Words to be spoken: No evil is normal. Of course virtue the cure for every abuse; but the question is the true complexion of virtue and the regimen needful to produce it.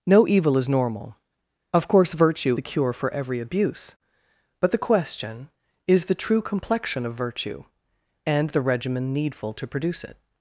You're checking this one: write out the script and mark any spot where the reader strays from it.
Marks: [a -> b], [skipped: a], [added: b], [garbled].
No evil is normal. Of course virtue the cure for every abuse; but the question is the true complexion of virtue and the regimen needful to produce it.